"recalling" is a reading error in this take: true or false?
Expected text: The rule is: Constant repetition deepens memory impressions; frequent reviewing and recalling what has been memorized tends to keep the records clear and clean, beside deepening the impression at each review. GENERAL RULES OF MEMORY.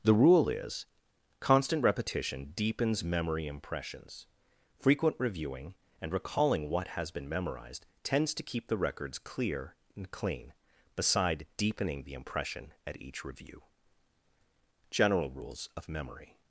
false